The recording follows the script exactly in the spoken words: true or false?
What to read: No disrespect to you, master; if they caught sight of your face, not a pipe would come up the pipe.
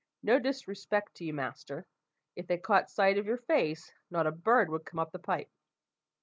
false